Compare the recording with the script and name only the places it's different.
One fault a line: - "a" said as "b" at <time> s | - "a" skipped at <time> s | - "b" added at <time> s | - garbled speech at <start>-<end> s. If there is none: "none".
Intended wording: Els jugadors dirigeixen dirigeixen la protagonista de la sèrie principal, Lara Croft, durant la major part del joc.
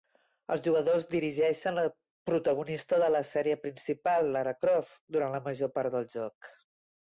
- "dirigeixen" skipped at 1.8 s